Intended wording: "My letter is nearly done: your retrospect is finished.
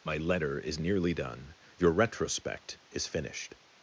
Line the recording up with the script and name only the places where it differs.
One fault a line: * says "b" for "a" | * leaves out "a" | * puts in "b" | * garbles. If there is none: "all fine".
all fine